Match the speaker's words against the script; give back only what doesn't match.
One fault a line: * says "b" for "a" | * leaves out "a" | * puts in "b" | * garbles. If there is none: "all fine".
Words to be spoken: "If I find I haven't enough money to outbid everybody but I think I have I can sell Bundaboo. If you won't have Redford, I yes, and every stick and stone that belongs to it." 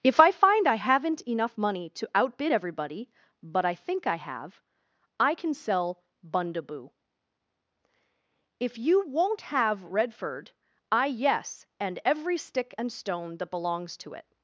all fine